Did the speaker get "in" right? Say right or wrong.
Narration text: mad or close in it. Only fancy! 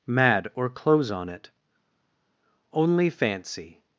wrong